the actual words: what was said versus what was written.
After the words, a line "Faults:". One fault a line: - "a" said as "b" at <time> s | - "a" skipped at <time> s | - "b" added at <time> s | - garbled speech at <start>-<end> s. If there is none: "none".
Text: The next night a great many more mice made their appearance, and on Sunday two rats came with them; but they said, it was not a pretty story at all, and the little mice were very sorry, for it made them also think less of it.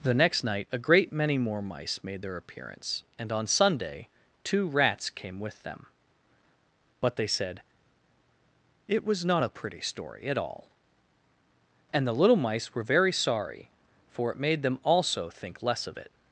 The next night a great many more mice made their appearance, and on Sunday two rats came with them; but they said, it was not a pretty story at all, and the little mice were very sorry, for it made them also think less of it.
Faults:
none